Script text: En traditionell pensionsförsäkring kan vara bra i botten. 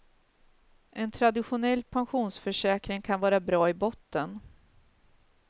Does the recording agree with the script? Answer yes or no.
yes